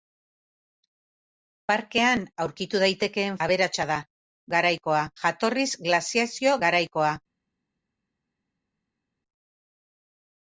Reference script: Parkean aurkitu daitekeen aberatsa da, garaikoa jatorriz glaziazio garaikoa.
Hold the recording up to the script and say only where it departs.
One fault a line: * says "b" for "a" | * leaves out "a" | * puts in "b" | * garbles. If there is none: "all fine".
all fine